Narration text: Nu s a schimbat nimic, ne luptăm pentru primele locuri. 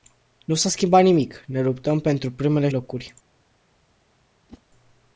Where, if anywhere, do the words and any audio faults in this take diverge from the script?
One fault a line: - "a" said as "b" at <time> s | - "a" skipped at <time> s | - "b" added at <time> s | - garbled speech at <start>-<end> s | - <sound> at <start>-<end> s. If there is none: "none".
- whoosh at 4.5-4.6 s